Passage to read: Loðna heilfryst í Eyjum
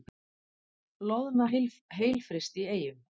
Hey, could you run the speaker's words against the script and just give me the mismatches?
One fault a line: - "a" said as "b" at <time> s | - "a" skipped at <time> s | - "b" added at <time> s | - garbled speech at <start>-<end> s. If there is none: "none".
none